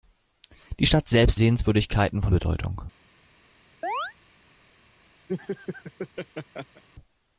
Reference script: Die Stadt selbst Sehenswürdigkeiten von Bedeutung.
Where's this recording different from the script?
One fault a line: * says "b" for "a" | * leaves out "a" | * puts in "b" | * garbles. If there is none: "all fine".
all fine